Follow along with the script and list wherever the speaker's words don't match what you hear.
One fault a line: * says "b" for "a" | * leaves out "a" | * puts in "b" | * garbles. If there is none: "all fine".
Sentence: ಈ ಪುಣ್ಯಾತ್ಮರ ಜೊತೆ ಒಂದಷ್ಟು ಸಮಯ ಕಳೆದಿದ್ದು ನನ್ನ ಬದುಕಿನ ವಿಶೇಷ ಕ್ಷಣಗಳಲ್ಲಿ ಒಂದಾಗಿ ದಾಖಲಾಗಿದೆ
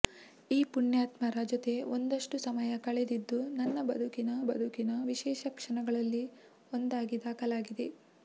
* puts in "ಬದುಕಿನ"